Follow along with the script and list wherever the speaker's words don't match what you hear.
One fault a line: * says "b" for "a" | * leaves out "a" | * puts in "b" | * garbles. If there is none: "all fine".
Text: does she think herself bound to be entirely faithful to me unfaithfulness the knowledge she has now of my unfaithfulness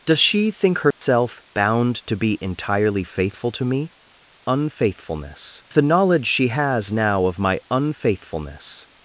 all fine